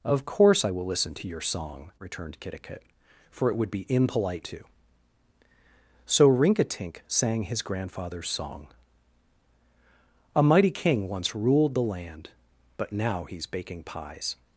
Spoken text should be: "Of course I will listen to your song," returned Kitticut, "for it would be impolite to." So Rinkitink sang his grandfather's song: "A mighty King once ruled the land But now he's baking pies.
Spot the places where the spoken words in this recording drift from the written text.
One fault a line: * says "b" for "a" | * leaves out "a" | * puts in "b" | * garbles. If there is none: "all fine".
all fine